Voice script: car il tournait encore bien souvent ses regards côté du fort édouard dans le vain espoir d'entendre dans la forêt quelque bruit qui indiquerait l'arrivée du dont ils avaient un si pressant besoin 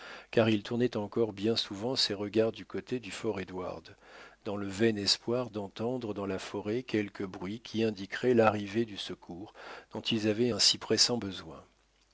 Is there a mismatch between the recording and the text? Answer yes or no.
yes